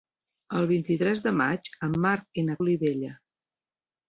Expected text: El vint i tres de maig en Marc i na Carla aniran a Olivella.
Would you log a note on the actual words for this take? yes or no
yes